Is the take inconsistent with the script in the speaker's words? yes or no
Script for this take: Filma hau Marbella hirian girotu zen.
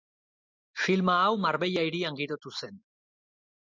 no